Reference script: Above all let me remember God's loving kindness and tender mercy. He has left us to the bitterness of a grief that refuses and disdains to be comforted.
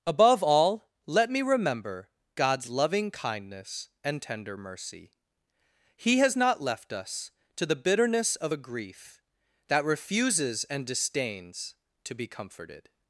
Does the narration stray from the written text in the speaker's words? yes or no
yes